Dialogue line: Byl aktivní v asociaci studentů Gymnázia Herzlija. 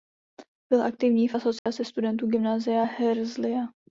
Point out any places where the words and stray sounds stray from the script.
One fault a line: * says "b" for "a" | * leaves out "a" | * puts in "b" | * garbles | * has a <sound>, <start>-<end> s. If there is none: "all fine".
* has a dropout, 1.6-1.7 s